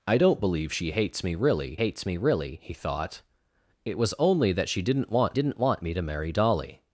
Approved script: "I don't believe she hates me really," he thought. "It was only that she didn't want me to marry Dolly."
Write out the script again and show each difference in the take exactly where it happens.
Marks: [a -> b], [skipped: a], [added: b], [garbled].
"I don't believe she hates me really," [added: hates me really] he thought. "It was only that she didn't want [added: didn't want] me to marry Dolly."